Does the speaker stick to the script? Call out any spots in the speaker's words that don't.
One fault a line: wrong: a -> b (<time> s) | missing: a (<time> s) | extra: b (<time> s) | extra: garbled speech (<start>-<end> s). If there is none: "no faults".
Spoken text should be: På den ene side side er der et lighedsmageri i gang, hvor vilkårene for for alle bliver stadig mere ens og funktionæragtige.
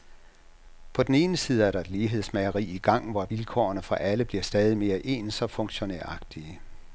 missing: side (1.6 s)
missing: for (3.9 s)